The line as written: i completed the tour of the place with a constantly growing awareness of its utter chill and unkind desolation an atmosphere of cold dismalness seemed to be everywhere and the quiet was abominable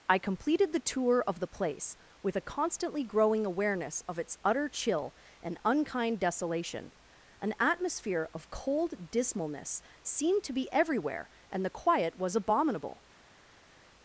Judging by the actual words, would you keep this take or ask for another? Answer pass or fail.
pass